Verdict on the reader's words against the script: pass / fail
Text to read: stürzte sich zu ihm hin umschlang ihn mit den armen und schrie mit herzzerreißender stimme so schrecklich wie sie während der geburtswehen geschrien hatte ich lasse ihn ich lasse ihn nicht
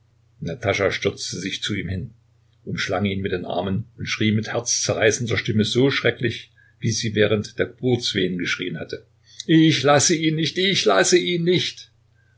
fail